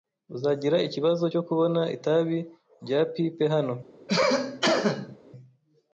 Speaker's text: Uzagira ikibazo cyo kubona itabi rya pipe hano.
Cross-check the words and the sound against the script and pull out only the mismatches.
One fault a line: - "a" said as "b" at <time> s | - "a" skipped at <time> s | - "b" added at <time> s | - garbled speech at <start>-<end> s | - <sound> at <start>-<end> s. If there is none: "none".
- cough at 4.1-5.2 s